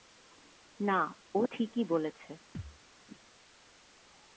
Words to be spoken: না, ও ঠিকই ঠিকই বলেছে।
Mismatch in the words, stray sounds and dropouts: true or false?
true